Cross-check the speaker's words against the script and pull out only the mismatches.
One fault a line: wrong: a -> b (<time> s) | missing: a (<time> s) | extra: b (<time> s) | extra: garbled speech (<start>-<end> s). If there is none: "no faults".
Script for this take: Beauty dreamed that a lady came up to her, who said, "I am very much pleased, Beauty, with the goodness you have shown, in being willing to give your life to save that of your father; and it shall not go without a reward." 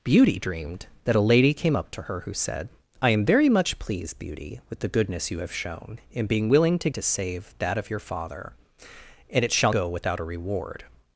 missing: give your life (6.9 s)
missing: not (9.7 s)